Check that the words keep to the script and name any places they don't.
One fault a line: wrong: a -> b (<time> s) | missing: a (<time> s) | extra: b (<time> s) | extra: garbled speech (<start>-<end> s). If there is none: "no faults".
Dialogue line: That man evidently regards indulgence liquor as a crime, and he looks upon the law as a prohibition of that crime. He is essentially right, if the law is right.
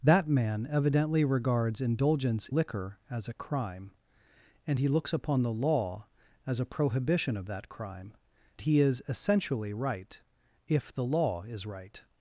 no faults